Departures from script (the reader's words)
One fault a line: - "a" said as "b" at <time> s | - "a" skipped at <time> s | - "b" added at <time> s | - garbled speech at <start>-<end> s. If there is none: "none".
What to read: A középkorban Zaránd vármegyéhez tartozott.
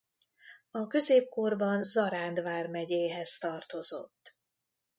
none